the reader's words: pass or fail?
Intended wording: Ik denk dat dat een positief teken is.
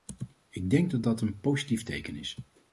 pass